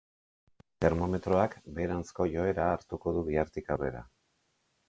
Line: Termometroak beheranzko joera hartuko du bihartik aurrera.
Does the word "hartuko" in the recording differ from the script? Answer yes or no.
no